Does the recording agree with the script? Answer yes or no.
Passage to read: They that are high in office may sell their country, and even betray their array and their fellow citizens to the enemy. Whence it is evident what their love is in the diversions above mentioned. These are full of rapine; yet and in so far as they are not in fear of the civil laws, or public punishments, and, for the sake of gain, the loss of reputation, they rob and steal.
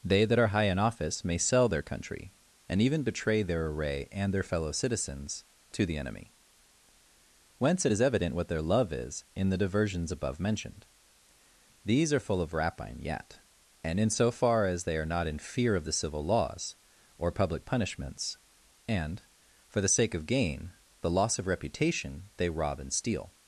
yes